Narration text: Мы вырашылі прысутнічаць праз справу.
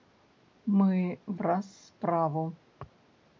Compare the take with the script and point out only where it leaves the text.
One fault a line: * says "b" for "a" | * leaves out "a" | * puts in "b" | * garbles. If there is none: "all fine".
* leaves out "вырашылі прысутнічаць"